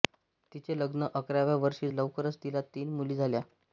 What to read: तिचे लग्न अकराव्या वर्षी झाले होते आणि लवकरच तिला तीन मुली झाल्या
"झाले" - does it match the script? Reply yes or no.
no